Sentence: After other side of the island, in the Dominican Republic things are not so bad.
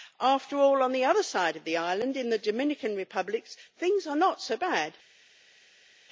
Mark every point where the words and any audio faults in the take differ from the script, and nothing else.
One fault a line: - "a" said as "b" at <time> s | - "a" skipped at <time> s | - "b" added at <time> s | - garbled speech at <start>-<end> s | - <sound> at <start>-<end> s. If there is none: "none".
- "all on the" added at 0.6 s